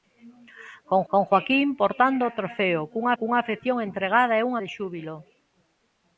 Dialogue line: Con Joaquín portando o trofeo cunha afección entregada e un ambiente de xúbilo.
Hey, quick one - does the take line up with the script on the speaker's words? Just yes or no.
no